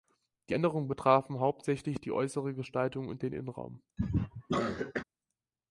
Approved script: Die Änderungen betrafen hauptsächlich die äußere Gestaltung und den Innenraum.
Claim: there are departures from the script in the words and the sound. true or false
true